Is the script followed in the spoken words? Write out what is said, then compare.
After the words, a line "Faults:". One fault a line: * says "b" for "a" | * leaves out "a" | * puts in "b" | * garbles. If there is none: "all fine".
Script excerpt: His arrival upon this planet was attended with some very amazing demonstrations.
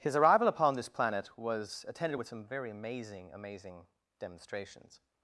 His arrival upon this planet was attended with some very amazing amazing demonstrations.
Faults:
* puts in "amazing"